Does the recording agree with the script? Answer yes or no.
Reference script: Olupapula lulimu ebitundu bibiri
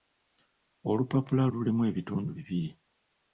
yes